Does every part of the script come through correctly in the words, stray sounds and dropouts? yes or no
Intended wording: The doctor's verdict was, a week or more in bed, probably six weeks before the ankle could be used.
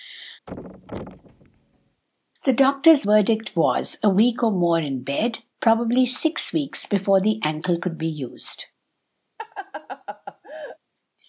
no